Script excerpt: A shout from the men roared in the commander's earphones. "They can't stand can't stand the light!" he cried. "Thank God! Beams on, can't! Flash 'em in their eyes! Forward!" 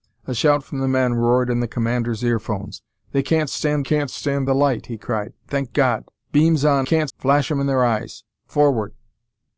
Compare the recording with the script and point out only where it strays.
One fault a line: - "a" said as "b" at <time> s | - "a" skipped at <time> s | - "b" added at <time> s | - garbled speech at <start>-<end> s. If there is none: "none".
none